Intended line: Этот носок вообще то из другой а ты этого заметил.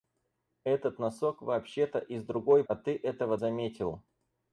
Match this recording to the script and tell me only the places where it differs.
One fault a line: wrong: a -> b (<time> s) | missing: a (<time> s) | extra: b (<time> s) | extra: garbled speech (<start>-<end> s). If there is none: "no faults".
no faults